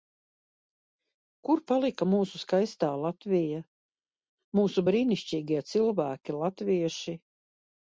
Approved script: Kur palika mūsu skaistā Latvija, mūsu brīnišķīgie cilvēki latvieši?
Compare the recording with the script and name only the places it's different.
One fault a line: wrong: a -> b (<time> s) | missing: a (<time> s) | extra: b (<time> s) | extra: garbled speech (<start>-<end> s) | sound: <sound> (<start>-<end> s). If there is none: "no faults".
no faults